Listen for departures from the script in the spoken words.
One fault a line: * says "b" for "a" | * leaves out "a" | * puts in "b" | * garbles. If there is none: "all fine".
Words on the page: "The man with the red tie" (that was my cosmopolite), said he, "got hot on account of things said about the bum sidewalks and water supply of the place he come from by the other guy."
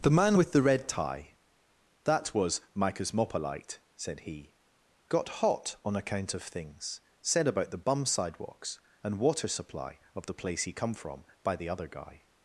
all fine